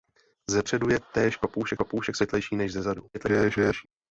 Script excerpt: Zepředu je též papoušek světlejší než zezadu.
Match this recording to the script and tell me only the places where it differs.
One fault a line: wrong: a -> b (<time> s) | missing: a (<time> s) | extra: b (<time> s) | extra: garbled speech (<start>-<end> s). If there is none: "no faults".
extra: papoušek (1.7 s)
extra: garbled speech (3.1-3.9 s)